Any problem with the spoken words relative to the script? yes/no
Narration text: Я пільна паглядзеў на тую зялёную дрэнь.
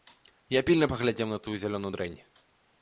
no